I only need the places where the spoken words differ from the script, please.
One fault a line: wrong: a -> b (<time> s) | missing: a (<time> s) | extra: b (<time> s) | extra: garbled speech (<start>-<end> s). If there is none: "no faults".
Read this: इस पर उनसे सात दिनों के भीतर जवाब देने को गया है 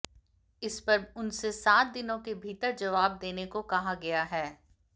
extra: कहा (3.6 s)